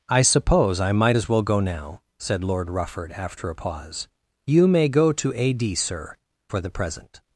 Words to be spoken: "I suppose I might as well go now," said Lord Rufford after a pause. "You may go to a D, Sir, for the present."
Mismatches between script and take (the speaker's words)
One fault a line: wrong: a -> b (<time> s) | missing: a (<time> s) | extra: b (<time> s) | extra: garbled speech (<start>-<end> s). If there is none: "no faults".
no faults